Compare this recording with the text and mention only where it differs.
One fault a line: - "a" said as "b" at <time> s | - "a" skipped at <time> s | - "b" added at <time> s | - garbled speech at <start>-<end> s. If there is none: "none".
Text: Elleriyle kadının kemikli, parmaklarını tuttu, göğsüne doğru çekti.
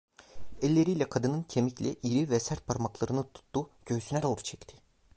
- "iri ve sert" added at 2.0 s